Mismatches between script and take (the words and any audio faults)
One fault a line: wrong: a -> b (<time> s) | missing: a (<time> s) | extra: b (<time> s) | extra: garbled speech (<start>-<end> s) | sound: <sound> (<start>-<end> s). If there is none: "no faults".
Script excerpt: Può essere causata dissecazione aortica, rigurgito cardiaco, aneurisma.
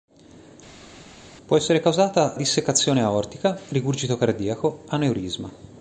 no faults